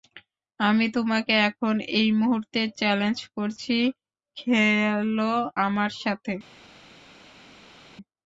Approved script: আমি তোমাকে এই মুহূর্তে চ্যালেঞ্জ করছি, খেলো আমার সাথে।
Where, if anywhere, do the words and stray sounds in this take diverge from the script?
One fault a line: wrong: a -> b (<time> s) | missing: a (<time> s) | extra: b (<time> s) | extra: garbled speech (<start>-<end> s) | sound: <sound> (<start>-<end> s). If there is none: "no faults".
extra: এখন (1.5 s)